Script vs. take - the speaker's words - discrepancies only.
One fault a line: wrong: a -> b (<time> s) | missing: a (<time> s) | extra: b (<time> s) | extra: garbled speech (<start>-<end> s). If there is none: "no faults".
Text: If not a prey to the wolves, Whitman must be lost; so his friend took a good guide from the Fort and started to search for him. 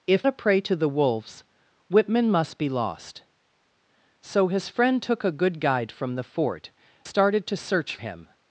missing: not (0.3 s)
missing: and (6.7 s)
missing: for (8.0 s)